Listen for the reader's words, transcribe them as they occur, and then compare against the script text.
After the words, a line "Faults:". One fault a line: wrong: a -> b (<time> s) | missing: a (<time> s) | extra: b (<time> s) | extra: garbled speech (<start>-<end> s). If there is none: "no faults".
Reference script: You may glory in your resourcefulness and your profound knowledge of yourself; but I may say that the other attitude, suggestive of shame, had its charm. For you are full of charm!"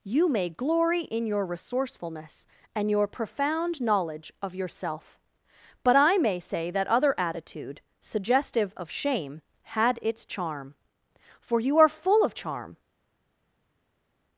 You may glory in your resourcefulness and your profound knowledge of yourself; but I may say that other attitude, suggestive of shame, had its charm. For you are full of charm!"
Faults:
missing: the (6.9 s)